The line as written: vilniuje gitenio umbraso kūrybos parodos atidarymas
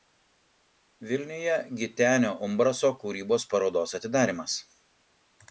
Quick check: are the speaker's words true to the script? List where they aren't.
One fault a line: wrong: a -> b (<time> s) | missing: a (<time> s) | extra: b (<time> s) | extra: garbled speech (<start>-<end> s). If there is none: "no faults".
no faults